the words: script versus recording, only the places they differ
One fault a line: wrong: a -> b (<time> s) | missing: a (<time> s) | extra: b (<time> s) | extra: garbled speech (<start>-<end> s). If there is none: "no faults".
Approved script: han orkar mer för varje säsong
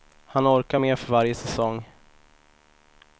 no faults